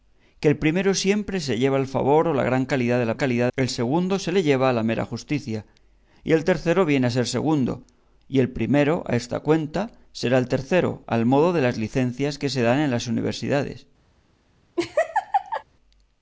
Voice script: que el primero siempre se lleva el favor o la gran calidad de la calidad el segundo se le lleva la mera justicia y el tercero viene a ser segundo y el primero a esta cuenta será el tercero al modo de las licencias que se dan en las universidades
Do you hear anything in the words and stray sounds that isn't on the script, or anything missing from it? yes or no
yes